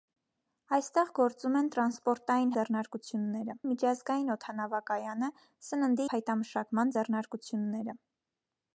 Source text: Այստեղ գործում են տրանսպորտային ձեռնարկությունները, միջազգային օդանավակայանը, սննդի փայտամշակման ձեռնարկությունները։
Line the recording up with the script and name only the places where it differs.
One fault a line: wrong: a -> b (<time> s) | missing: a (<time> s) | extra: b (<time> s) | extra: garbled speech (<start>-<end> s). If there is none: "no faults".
no faults